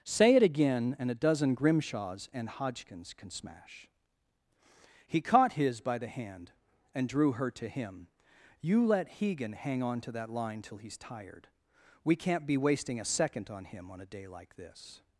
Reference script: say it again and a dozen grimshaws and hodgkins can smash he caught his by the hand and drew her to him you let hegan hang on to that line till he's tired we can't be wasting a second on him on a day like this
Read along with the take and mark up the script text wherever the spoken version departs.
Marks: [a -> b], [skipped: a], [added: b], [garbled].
say it again and a dozen grimshaws and hodgkins can smash he caught his by the hand and drew her to him you let hegan hang on to that line till he's tired we can't be wasting a second on him on a day like this